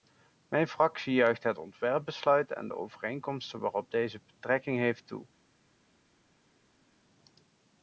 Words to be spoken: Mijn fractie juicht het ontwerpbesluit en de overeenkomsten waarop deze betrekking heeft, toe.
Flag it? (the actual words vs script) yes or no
no